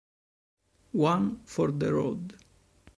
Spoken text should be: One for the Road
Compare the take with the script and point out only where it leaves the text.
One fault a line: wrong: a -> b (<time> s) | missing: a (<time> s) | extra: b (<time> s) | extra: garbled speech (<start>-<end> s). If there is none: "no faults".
no faults